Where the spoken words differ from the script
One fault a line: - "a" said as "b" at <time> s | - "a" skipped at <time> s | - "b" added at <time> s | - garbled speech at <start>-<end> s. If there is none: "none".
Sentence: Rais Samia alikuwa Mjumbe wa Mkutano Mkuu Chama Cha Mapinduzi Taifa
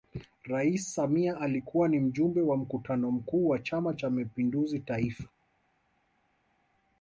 - "ni" added at 1.9 s
- "wa" added at 3.5 s